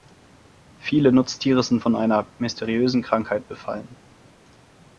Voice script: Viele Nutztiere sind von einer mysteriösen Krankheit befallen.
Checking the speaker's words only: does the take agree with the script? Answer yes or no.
yes